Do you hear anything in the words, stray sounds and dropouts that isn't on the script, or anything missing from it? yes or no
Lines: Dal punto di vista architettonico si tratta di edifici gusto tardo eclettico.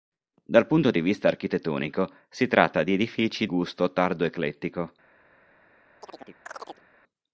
yes